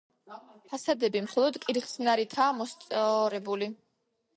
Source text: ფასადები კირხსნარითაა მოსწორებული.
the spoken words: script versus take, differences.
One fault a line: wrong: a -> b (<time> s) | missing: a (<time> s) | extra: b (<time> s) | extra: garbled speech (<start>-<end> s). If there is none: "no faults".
extra: მხოლოდ (1.3 s)